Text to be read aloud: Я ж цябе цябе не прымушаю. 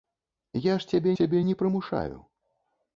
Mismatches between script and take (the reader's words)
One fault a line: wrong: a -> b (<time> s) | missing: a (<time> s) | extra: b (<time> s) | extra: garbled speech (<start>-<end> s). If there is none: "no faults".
no faults